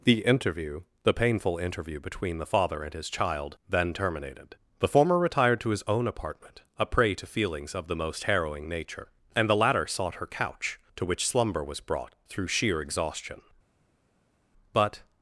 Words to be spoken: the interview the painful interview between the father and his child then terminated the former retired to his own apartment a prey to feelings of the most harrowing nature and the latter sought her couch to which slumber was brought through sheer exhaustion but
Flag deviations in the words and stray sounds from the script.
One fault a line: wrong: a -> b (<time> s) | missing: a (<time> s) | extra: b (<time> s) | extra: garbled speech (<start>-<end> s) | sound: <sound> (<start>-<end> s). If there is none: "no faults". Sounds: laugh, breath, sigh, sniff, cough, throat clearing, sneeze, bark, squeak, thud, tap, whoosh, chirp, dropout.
no faults